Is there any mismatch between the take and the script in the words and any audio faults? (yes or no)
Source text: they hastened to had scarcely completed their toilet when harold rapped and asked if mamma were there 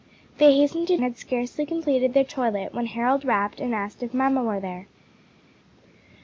no